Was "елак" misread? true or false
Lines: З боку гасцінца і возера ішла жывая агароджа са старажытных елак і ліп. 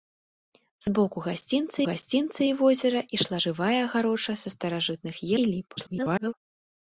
true